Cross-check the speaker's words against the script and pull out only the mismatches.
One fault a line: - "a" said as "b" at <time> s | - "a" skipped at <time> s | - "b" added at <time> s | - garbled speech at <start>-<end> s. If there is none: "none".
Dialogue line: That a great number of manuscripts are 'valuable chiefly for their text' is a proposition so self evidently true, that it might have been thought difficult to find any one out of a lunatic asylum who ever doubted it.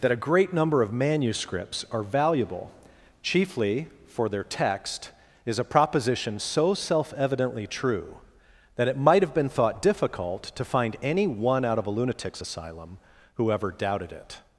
- "lunatic" said as "lunatics" at 11.9 s